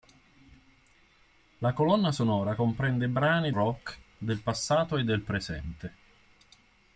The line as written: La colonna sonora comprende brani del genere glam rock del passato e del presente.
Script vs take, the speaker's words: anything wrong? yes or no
yes